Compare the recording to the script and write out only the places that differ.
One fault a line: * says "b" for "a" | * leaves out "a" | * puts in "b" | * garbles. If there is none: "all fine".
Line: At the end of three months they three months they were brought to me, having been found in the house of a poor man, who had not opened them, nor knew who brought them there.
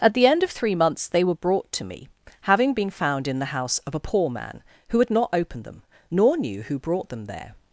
* leaves out "three months they"